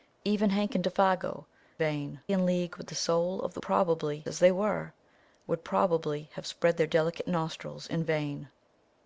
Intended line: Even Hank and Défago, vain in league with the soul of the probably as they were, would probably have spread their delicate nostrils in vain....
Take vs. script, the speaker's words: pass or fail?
pass